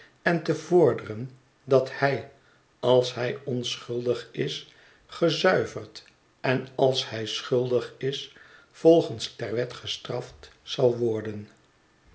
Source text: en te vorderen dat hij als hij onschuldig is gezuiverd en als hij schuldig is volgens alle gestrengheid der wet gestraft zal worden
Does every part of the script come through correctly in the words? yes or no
no